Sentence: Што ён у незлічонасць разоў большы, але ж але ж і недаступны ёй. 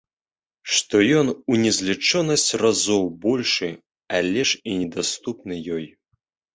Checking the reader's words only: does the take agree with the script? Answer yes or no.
no